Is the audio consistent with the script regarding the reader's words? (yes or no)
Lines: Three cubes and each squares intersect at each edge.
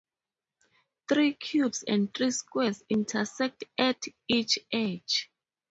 no